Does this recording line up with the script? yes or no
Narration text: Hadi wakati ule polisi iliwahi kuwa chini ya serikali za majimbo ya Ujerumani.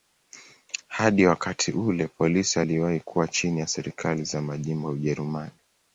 yes